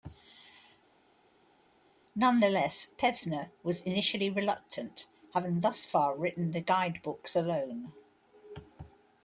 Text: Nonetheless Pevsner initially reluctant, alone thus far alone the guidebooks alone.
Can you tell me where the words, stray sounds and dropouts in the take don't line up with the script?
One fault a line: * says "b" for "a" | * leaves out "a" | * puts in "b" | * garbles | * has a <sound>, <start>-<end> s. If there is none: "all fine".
* puts in "was"
* says "having" for "alone"
* says "written" for "alone"